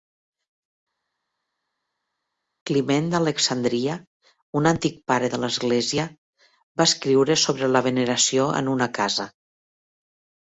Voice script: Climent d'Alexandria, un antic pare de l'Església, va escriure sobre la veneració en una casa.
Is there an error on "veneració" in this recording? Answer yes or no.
no